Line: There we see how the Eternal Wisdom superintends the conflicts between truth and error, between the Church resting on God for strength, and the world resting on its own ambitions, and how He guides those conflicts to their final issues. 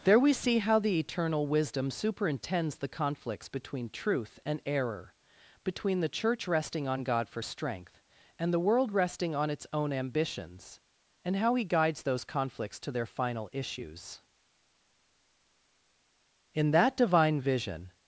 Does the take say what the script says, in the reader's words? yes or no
no